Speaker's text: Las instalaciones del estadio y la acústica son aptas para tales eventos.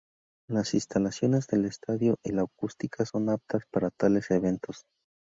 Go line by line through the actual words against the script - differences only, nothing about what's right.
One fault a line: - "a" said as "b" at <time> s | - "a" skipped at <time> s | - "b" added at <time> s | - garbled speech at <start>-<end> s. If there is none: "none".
none